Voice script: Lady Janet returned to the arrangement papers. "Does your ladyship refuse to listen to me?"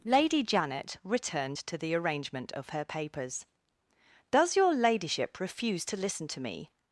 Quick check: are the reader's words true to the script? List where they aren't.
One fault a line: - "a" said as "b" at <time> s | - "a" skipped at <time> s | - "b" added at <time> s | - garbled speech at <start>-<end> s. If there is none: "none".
- "of her" added at 2.5 s